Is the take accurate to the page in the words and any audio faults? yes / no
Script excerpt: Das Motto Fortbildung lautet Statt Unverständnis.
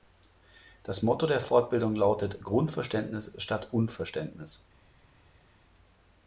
no